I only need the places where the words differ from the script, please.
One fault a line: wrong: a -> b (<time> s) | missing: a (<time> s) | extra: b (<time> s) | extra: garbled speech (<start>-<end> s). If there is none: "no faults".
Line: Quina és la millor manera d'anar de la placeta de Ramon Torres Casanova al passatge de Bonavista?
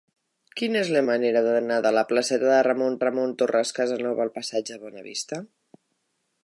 missing: millor (1.0 s)
extra: Ramon (3.1 s)